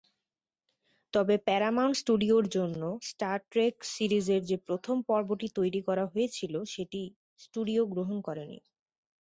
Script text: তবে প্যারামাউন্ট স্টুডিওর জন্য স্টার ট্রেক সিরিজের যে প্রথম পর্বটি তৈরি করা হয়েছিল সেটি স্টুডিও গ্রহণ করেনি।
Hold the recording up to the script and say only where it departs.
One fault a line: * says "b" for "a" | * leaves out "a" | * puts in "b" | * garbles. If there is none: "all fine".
all fine